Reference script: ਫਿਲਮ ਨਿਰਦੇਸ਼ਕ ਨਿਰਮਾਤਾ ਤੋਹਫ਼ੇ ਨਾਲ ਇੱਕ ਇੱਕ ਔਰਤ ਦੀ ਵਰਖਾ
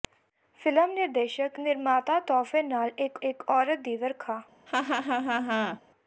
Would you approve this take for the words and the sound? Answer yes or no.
no